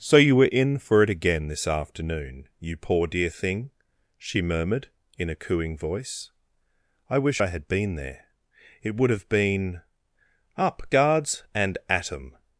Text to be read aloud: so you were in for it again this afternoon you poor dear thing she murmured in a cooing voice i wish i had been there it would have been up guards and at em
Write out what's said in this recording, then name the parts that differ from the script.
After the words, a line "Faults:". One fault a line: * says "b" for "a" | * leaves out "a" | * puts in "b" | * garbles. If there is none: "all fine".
so you were in for it again this afternoon you poor dear thing she murmured in a cooing voice i wish i had been there it would have been up guards and at em
Faults:
all fine